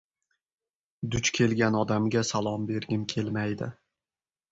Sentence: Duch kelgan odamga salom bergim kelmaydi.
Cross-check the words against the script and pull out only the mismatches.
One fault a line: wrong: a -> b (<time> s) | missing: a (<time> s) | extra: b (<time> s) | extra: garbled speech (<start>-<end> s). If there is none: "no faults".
no faults